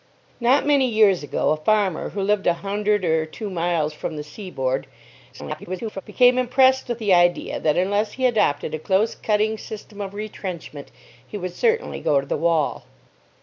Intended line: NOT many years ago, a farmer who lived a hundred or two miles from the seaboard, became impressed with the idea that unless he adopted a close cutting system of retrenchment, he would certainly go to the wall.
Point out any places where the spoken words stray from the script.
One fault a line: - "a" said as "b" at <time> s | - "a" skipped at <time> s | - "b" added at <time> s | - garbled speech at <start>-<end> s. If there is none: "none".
- garbled speech at 5.3-6.0 s